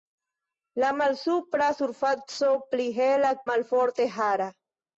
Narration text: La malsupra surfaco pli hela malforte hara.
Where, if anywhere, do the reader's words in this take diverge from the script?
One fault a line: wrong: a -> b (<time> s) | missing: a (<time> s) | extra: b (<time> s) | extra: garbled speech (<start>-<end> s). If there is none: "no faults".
no faults